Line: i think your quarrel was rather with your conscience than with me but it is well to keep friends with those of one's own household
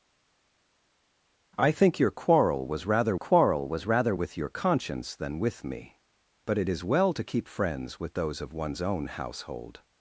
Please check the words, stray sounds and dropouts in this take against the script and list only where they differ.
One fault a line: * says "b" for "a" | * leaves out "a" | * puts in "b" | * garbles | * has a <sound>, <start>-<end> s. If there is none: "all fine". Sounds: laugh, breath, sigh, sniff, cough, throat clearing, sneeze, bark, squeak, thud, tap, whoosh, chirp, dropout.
* puts in "quarrel was rather"